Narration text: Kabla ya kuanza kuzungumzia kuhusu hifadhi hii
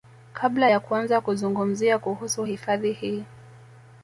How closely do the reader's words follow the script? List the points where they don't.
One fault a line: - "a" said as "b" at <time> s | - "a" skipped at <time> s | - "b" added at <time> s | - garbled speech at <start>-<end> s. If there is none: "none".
none